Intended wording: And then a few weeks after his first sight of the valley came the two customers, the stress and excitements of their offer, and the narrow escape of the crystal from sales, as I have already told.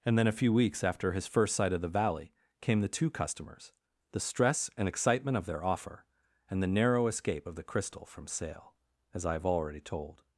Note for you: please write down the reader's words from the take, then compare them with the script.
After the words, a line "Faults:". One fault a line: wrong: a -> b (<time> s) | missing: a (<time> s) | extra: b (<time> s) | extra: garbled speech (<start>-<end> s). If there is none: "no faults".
And then a few weeks after his first sight of the valley came the two customers, the stress and excitement of their offer, and the narrow escape of the crystal from sale, as I have already told.
Faults:
wrong: excitements -> excitement (4.9 s)
wrong: sales -> sale (8.3 s)